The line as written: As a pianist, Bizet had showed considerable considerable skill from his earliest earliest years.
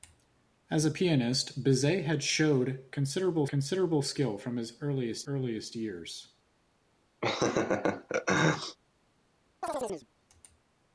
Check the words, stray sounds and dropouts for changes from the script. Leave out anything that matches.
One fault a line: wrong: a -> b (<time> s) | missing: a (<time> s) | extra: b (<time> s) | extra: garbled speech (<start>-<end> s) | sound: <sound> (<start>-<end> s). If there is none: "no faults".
sound: laugh (7.2-8.8 s)
sound: chirp (9.6-10.1 s)